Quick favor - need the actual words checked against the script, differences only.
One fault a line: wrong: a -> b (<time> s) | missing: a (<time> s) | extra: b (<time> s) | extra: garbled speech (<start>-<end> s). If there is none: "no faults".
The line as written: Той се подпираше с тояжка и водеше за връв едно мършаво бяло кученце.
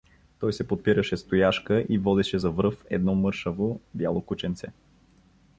no faults